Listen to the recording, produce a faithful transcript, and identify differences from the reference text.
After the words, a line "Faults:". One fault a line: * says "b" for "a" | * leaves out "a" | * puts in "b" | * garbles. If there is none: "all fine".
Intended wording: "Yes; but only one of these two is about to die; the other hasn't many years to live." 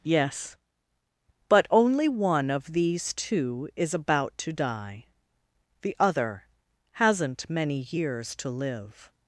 "Yes; but only one of these two is about to die; the other hasn't many years to live."
Faults:
all fine